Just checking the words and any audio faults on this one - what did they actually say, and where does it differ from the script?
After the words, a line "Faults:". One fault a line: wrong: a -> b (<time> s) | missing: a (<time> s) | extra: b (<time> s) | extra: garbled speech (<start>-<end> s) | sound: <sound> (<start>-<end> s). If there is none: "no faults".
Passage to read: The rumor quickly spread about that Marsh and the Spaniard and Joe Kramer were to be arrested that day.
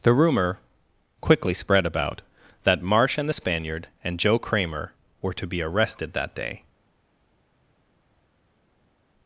The rumor quickly spread about that Marsh and the Spaniard and Joe Kramer were to be arrested that day.
Faults:
no faults